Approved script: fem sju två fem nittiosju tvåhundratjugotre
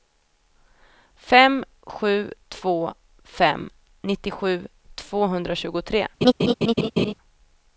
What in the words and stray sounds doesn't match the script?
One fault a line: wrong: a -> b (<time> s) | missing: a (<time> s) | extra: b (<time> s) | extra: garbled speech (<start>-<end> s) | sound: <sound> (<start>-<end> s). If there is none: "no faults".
sound: laugh (6.2-7.1 s)